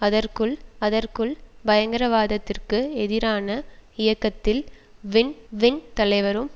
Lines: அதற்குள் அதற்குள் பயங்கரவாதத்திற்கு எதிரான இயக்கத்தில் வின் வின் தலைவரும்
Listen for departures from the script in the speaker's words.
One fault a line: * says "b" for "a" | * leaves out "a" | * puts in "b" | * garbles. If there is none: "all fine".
all fine